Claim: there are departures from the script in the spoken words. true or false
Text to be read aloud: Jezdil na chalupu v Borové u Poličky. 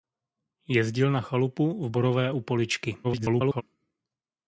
true